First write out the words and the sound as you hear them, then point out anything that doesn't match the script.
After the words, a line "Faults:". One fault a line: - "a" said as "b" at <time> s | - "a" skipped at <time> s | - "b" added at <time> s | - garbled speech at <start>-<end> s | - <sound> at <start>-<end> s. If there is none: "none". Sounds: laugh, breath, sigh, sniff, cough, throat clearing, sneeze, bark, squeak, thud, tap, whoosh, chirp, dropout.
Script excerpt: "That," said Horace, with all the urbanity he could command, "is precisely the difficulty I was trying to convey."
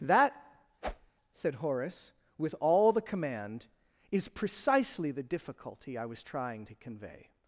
"That," said Horace, with all the command, "is precisely the difficulty I was trying to convey."
Faults:
- whoosh at 0.8-1.1 s
- "urbanity he could" skipped at 3.0 s